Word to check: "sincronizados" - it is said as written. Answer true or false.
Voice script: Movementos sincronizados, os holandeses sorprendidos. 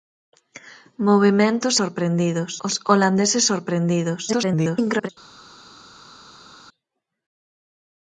false